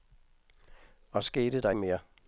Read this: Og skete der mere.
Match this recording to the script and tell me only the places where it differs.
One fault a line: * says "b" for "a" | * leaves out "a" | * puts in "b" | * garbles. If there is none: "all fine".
all fine